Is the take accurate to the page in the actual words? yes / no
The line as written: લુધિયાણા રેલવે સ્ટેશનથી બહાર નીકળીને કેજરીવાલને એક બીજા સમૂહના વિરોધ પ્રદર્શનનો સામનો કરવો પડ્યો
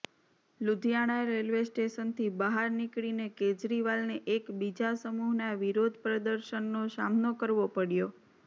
yes